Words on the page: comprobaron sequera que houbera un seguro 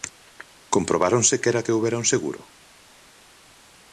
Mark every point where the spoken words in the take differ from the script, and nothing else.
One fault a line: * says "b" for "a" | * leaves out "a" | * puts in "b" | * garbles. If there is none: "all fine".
all fine